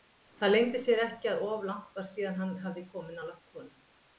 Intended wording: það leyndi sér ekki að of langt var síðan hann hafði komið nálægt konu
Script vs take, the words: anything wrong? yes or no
no